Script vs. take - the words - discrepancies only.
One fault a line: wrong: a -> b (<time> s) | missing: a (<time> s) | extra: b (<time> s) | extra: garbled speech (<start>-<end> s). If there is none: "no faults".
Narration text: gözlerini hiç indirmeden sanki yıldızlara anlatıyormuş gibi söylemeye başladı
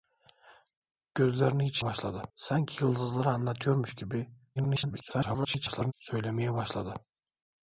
wrong: indirmeden -> başladı (1.8 s)
extra: garbled speech (4.6-5.9 s)